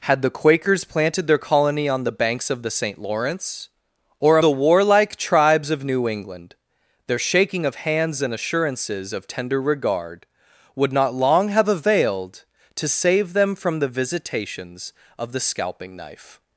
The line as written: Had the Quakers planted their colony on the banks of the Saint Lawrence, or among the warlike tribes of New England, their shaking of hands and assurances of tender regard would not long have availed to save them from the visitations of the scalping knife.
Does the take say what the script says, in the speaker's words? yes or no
no